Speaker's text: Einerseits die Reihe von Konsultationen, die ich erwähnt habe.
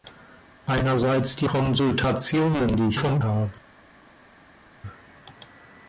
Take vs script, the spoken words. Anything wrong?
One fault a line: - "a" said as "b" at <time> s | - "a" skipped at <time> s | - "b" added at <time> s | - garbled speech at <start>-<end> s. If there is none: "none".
- "Reihe von" skipped at 1.4 s
- "erwähnt" said as "von" at 2.9 s